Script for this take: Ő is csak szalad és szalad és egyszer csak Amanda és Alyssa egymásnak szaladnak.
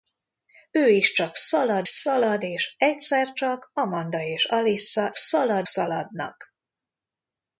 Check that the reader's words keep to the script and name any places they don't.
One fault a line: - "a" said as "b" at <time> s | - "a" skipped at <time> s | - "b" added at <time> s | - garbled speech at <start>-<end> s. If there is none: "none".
- "és" skipped at 1.9 s
- "egymásnak" said as "szalad" at 5.2 s